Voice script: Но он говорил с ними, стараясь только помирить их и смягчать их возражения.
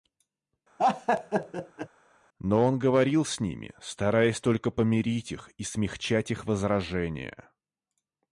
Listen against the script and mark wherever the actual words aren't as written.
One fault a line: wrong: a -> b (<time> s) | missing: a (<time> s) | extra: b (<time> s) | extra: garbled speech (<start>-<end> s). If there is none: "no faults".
no faults